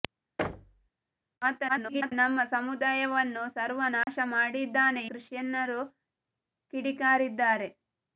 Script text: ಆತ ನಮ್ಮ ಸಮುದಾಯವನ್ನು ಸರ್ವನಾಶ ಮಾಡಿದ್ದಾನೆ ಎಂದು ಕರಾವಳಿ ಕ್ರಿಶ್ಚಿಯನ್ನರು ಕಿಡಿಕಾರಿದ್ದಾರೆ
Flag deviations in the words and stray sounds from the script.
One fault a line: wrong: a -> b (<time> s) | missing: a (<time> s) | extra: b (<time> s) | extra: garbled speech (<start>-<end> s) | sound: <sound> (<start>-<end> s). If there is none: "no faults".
sound: thud (0.4-0.9 s)
extra: garbled speech (1.7-2.1 s)
sound: dropout (4.0-4.1 s)
missing: ಎಂದು ಕರಾವಳಿ (5.0 s)